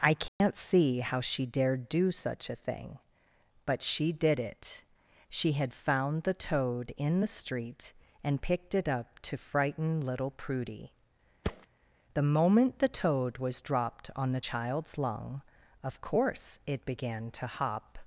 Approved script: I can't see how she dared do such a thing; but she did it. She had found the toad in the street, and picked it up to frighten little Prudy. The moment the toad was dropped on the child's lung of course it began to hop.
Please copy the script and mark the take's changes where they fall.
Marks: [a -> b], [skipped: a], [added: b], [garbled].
I can't see how she dared do such a thing; but she did it. She had found the toad in the street, and picked it up to frighten little Prudy. The moment the toad was dropped on the child's lung of course it began to hop.